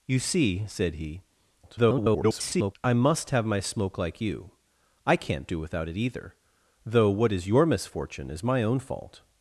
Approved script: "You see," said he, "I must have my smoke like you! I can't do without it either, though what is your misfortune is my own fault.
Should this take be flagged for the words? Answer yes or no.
yes